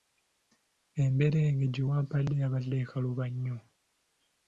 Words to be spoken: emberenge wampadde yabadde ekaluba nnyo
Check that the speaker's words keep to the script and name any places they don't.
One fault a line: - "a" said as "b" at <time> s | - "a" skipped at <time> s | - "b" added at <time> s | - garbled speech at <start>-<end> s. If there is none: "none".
- "gye" added at 1.7 s